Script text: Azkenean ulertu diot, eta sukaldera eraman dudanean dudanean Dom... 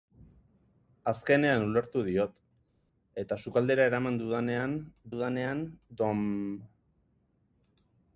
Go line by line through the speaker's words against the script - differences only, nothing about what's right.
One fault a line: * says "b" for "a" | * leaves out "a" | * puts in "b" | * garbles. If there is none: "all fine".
all fine